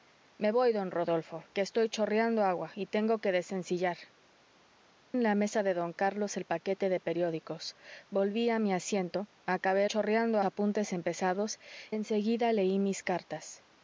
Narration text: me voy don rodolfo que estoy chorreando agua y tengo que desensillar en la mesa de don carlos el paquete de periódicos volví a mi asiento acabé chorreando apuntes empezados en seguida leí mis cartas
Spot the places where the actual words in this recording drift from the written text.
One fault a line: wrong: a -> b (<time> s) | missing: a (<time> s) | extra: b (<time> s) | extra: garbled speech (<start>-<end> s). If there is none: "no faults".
no faults